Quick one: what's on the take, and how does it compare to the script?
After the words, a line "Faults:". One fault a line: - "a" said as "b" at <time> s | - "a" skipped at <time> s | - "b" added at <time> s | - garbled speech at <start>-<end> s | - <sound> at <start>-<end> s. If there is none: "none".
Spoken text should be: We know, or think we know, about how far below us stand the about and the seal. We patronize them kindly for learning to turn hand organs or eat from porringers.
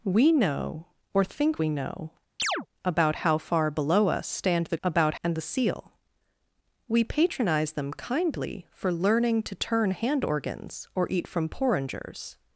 We know, or think we know, about how far below us stand the about and the seal. We patronize them kindly for learning to turn hand organs or eat from porringers.
Faults:
- chirp at 2.4-2.7 s